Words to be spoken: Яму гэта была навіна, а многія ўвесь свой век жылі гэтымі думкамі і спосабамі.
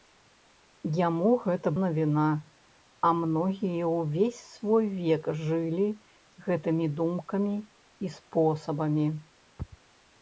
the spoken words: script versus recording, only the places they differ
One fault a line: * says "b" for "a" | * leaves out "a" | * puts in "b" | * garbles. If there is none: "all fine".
* leaves out "была"